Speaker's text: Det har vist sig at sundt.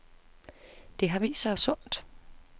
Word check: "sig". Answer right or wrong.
right